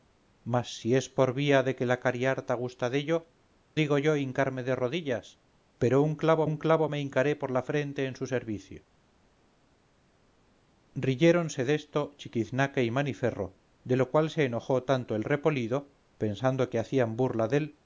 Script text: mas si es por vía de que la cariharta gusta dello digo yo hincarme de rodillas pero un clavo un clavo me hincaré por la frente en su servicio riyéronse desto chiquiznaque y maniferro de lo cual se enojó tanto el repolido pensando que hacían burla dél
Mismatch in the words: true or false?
false